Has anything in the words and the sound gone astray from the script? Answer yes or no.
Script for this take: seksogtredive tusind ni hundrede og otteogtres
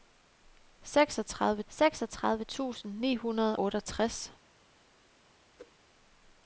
yes